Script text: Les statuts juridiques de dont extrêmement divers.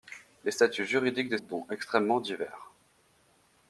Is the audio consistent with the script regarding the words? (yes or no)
yes